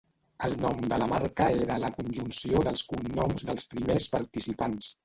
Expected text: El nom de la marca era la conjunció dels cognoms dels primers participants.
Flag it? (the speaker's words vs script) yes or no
no